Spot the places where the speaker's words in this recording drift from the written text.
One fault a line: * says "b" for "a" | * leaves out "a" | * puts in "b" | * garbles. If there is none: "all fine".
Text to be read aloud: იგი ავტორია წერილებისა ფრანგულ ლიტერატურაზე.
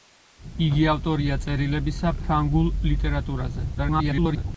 * garbles